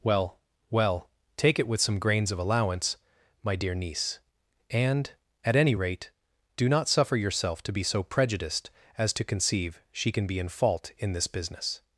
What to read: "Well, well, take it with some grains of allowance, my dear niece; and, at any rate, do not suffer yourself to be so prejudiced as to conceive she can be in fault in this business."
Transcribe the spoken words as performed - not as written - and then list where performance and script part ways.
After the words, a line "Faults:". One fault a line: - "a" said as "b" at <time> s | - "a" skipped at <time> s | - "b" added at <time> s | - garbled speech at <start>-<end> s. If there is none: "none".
"Well, well, take it with some grains of allowance, my dear niece; and, at any rate, do not suffer yourself to be so prejudiced as to conceive she can be in fault in this business."
Faults:
none